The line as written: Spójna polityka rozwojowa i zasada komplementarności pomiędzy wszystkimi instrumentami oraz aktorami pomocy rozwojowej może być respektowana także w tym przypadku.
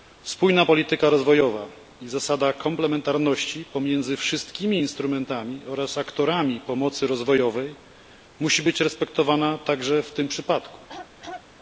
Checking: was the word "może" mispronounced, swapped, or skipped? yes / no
yes